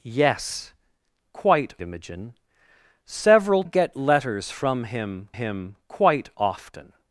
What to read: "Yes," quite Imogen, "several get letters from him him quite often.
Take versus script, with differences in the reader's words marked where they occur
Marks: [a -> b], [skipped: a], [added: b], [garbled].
"Yes," quite Imogen, "several get letters from him him quite often.